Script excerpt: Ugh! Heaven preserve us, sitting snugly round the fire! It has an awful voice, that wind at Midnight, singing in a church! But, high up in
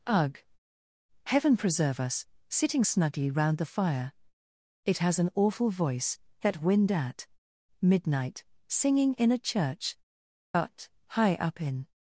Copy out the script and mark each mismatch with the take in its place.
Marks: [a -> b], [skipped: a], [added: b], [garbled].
Ugh! Heaven preserve us, sitting snugly round the fire! It has an awful voice, that wind at Midnight, singing in a church! But, high up in